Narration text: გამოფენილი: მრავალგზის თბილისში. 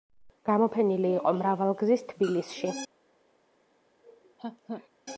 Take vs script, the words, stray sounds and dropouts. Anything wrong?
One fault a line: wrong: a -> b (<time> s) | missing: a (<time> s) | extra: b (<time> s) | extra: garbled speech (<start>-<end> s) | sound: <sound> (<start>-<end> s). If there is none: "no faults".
extra: იყო (1.2 s)
sound: laugh (4.0-4.9 s)